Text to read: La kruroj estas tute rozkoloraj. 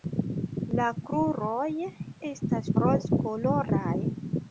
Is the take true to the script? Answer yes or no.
no